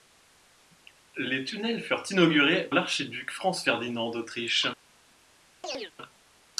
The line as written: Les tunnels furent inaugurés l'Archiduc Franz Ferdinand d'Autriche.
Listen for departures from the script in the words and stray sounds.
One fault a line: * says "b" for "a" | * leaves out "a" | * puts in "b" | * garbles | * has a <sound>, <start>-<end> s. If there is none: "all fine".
* has a chirp, 5.6-5.9 s